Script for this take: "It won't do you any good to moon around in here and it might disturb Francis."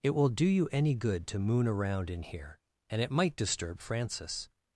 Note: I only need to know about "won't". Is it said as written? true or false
false